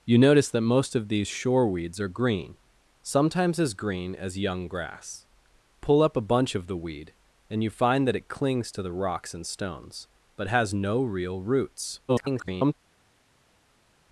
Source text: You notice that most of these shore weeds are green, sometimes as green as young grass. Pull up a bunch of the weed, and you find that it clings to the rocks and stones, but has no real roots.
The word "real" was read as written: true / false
true